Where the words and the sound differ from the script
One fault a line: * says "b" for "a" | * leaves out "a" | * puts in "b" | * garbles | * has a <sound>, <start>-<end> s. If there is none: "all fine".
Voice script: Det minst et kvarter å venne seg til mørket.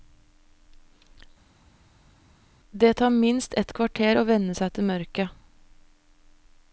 * puts in "tar"